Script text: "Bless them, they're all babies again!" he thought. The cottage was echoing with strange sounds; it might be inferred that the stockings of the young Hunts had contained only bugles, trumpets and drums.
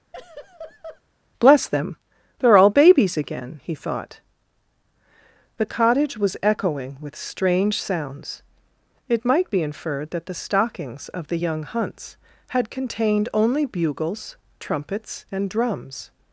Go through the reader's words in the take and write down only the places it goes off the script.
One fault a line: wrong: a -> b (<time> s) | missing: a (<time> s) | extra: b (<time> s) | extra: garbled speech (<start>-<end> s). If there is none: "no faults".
no faults